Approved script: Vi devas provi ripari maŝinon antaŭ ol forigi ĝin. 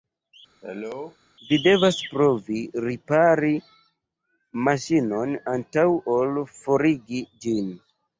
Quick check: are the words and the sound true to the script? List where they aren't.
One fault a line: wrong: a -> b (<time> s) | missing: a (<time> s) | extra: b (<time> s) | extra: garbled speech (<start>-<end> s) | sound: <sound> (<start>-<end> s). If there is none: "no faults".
sound: cough (0.6-1.2 s)